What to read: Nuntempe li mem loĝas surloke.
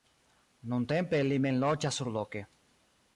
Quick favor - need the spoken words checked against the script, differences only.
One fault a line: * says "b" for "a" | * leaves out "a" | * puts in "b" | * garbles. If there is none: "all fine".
all fine